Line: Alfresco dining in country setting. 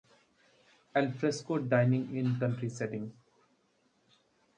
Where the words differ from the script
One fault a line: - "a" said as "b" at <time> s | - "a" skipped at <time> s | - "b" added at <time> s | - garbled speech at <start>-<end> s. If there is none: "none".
none